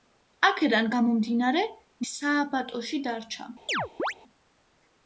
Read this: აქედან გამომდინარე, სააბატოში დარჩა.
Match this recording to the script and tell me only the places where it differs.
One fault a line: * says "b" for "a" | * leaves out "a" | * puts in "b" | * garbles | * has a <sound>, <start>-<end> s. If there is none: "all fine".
* has a chirp, 3.7-4.1 s